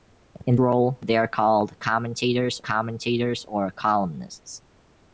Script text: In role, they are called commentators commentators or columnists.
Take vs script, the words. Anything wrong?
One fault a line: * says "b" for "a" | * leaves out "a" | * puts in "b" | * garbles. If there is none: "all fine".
all fine